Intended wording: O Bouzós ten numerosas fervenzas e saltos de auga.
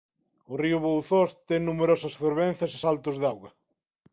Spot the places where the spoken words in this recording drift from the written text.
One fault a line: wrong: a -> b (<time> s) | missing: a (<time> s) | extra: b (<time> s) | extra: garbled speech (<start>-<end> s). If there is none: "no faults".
extra: río (0.6 s)